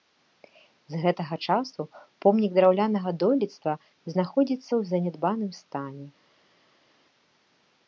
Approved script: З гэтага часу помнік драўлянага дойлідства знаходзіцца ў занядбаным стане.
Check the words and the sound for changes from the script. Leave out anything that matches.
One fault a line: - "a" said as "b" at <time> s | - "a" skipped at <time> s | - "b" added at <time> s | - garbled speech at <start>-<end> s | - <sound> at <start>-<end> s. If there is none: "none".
none